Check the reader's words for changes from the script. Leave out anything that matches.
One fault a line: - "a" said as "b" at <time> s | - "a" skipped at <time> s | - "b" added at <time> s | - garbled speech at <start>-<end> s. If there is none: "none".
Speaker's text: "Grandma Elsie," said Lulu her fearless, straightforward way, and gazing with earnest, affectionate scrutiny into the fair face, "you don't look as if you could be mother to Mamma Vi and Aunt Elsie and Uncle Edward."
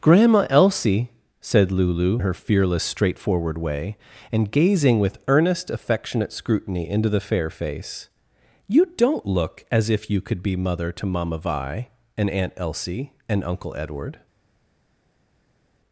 none